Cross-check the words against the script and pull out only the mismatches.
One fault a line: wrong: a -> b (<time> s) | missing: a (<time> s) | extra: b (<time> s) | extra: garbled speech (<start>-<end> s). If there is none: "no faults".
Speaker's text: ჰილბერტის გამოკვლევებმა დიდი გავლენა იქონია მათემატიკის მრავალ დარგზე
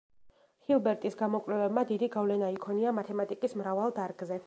no faults